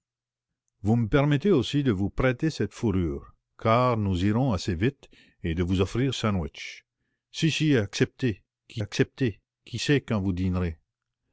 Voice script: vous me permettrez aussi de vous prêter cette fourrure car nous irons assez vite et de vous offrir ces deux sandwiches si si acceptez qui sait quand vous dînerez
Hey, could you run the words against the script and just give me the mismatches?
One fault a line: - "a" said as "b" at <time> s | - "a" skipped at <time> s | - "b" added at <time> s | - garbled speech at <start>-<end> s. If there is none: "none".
- "ces deux" skipped at 6.2 s
- "acceptez qui" added at 8.8 s